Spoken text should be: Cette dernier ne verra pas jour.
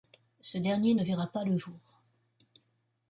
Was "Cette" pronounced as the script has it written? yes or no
no